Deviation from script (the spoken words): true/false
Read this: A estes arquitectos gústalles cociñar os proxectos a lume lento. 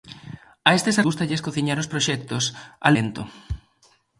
true